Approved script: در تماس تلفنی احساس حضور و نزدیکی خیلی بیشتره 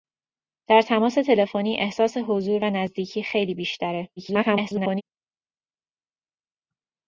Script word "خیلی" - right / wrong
right